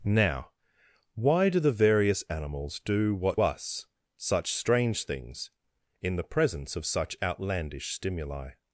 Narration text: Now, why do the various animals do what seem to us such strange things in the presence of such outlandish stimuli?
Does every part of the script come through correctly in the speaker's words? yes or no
no